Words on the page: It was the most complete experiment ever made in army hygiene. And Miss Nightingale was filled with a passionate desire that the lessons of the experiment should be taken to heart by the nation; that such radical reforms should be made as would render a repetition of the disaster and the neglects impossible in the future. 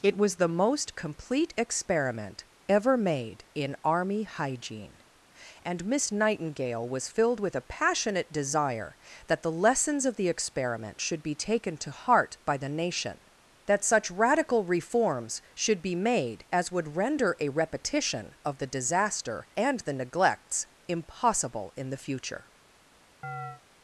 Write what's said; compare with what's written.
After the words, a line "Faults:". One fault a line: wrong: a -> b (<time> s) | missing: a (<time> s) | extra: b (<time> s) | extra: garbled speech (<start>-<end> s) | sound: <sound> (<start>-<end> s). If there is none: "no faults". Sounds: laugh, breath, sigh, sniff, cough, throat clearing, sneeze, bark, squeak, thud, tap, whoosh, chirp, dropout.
It was the most complete experiment ever made in army hygiene. And Miss Nightingale was filled with a passionate desire that the lessons of the experiment should be taken to heart by the nation; that such radical reforms should be made as would render a repetition of the disaster and the neglects impossible in the future.
Faults:
sound: chirp (23.2-23.6 s)